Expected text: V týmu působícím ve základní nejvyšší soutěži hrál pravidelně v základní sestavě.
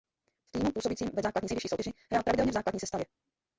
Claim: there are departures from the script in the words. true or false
false